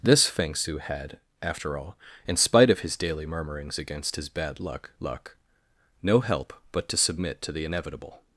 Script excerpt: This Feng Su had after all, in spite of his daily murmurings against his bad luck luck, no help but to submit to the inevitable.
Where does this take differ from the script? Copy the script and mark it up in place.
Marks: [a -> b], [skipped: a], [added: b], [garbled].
This Feng Su had after all, in spite of his daily murmurings against his bad luck luck, no help but to submit to the inevitable.